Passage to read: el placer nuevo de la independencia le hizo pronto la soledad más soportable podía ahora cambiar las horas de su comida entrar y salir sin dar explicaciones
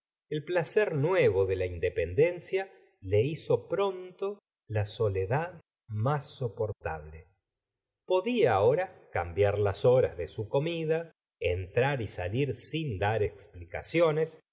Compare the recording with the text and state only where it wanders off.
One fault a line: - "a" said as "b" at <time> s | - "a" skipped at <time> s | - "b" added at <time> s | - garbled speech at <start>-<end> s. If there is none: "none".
none